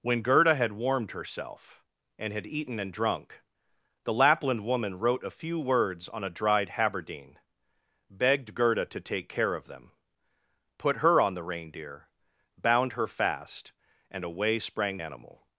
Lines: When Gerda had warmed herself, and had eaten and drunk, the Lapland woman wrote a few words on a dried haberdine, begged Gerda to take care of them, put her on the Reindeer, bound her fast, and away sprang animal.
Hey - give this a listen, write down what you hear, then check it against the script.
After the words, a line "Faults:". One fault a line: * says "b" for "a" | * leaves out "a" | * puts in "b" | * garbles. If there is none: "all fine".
When Gerda had warmed herself, and had eaten and drunk, the Lapland woman wrote a few words on a dried haberdine, begged Gerda to take care of them, put her on the Reindeer, bound her fast, and away sprang animal.
Faults:
all fine